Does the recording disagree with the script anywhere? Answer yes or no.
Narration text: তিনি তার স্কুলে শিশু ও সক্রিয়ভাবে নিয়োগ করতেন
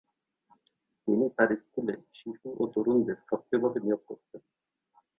yes